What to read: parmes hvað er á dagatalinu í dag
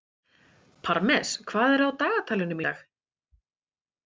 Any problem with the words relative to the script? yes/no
no